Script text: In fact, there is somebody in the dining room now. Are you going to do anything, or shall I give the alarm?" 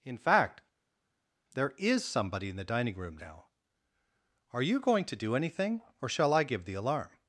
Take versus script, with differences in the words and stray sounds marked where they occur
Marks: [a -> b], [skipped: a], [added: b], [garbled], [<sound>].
In fact, there is somebody in the dining room now. Are you going to do anything, or shall I give the alarm?"